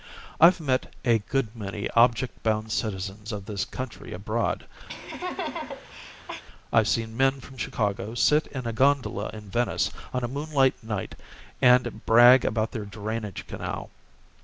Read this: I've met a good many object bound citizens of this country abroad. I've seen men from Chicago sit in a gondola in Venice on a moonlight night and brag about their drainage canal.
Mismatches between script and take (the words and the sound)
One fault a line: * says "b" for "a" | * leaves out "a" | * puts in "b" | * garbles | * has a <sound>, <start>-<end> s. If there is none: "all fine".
* has a laugh, 4.9-6.4 s